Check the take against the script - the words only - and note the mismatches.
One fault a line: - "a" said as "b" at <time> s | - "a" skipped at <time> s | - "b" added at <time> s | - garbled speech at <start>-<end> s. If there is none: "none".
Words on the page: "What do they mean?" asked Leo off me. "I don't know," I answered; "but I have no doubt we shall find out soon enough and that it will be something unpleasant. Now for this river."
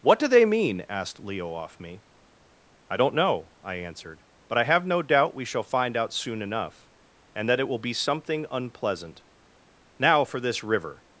none